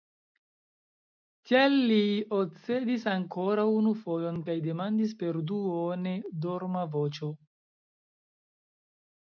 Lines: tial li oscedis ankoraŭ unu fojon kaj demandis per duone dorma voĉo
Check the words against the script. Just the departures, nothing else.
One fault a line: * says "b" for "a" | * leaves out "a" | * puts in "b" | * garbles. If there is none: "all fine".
all fine